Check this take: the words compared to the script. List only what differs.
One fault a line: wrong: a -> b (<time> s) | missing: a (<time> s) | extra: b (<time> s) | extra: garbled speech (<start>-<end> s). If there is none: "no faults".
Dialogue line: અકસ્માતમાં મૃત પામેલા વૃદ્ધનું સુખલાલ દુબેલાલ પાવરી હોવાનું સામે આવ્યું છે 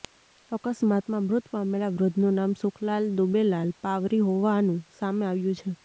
extra: નામ (2.4 s)